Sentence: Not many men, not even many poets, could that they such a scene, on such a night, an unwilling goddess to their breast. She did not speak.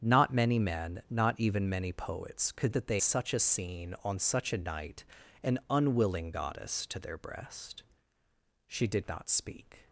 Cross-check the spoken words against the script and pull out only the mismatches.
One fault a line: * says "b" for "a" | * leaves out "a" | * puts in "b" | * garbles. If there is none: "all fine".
all fine